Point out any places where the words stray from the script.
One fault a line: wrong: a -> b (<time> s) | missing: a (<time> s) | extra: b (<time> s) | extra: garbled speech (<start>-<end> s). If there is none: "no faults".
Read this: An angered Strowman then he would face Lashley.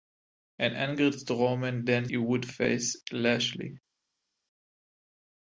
no faults